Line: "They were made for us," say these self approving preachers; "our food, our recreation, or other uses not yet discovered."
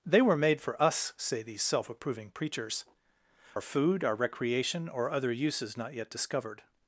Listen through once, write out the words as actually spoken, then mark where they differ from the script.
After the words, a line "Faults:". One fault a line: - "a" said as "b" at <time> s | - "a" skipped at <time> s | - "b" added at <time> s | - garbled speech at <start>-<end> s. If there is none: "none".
"They were made for us," say these self approving preachers; "our food, our recreation, or other uses not yet discovered."
Faults:
none